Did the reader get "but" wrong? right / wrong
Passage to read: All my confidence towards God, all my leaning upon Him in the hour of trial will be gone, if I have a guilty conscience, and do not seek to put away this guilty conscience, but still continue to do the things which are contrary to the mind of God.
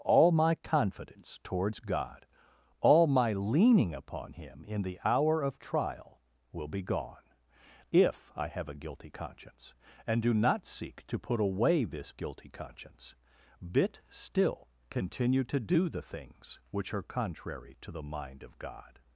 wrong